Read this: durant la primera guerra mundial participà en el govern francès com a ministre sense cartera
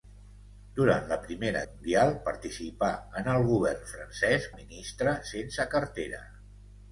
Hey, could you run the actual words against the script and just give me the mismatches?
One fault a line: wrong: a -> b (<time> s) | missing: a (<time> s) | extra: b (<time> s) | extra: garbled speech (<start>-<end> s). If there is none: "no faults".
missing: guerra (1.6 s)
missing: com (4.5 s)